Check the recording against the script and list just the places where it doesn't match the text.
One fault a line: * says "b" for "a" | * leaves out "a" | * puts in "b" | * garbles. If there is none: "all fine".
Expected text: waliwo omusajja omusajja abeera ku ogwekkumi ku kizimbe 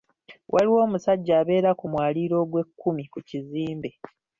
* leaves out "omusajja"
* puts in "mwaliiro"